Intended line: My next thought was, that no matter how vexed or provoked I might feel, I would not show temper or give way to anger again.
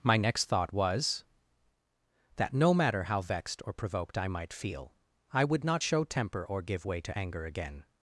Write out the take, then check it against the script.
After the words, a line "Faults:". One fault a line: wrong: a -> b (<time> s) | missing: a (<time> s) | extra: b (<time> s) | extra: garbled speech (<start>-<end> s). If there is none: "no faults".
My next thought was, that no matter how vexed or provoked I might feel, I would not show temper or give way to anger again.
Faults:
no faults